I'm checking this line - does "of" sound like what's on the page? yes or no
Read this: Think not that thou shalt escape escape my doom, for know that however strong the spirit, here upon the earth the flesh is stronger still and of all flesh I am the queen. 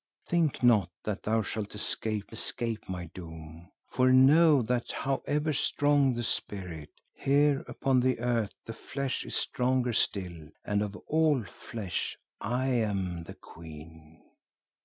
yes